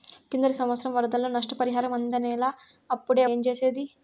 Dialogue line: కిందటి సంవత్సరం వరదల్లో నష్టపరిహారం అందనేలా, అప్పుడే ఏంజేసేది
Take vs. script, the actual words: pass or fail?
pass